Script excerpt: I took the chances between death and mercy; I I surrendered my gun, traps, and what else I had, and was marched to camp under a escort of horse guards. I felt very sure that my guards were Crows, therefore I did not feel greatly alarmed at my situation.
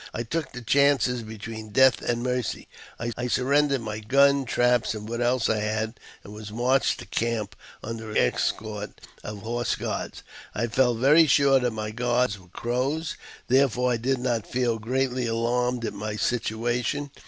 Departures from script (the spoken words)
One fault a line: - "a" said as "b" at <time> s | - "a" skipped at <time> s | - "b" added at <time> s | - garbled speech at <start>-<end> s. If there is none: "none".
none